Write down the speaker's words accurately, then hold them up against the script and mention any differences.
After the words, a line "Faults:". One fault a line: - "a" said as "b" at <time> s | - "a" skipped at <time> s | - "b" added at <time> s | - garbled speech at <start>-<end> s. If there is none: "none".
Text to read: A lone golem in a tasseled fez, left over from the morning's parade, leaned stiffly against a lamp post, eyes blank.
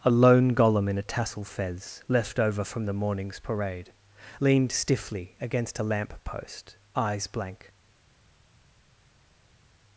A lone golem in a tassel fez, left over from the morning's parade, leaned stiffly against a lamp post, eyes blank.
Faults:
- "tasseled" said as "tassel" at 1.0 s